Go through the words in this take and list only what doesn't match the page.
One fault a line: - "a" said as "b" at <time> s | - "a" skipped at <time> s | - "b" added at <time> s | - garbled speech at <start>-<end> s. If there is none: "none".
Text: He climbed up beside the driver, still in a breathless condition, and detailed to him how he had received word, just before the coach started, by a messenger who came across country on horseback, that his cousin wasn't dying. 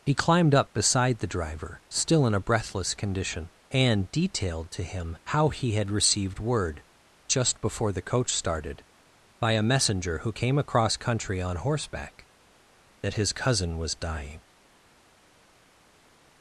- "wasn't" said as "was" at 13.8 s